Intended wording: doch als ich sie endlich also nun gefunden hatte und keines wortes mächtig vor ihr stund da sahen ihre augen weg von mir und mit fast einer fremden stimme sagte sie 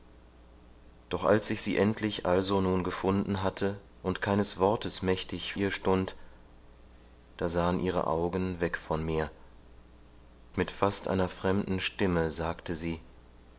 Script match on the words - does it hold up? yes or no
no